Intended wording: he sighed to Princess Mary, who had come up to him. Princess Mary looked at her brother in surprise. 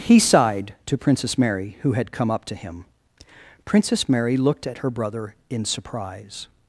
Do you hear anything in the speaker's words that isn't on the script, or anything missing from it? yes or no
no